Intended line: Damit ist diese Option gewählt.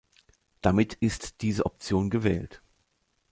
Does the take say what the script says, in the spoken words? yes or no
yes